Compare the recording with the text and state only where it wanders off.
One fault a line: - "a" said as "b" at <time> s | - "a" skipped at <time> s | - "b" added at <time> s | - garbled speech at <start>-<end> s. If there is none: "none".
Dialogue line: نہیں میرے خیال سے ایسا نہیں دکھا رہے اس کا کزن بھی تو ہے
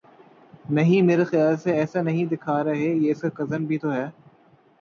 - "یہ" added at 2.9 s